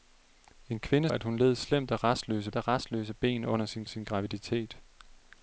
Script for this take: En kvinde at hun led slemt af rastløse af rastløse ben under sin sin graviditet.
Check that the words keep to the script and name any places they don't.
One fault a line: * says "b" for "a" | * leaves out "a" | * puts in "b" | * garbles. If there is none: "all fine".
all fine